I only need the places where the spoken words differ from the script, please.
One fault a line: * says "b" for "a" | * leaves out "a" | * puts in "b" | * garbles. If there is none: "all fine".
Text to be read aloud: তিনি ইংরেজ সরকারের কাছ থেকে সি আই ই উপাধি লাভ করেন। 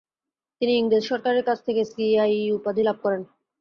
all fine